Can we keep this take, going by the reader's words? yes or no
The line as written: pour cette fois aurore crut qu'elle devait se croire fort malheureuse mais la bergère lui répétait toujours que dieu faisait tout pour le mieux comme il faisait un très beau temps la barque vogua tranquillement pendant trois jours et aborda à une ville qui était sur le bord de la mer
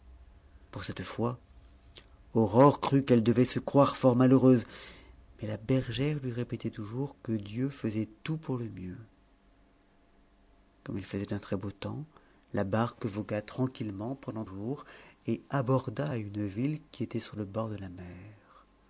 no